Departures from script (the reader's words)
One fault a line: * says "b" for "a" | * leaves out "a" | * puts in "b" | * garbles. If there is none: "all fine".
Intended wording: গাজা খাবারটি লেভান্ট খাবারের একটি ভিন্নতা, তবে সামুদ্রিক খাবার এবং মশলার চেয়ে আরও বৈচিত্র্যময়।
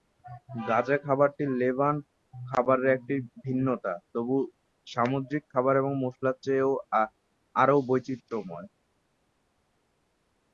all fine